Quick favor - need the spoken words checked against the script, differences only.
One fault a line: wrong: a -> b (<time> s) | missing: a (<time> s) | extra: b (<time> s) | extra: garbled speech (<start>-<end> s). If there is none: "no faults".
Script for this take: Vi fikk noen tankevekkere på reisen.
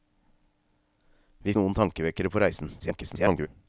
missing: fikk (1.6 s)
extra: garbled speech (2.8-3.5 s)